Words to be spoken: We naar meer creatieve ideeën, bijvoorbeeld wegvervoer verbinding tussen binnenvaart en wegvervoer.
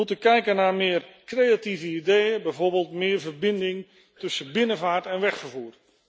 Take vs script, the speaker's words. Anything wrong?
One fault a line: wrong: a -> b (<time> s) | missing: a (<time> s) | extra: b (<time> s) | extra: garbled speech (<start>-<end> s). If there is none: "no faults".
extra: moeten kijken (0.1 s)
wrong: wegvervoer -> meer (2.9 s)